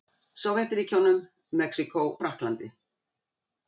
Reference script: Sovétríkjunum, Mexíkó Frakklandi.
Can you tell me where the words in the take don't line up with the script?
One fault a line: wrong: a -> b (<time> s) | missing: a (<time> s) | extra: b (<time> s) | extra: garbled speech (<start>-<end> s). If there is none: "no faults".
no faults